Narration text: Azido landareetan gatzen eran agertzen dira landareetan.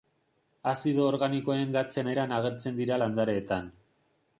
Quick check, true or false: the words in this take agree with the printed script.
false